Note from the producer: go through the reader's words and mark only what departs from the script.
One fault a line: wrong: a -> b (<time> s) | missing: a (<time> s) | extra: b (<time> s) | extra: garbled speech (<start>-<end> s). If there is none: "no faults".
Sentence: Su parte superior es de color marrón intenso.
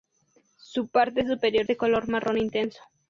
missing: es (1.7 s)